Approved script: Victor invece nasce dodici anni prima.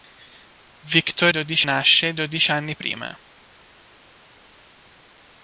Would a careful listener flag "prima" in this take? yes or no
no